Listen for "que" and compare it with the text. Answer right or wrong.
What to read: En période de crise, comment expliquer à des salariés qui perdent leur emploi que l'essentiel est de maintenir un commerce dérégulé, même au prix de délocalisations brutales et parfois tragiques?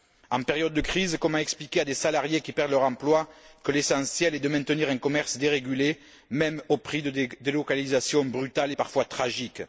right